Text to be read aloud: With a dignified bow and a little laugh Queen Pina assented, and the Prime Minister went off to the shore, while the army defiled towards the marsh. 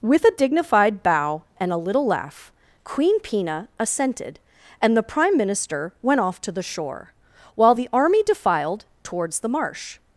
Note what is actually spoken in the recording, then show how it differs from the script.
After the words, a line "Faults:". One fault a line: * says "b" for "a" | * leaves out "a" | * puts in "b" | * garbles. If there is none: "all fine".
With a dignified bow and a little laugh Queen Pina assented, and the Prime Minister went off to the shore, while the army defiled towards the marsh.
Faults:
all fine